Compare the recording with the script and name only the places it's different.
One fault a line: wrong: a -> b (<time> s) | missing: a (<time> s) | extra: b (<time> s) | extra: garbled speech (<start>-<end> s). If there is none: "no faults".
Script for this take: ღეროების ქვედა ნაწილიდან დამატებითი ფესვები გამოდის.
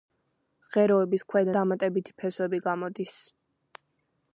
missing: ნაწილიდან (1.5 s)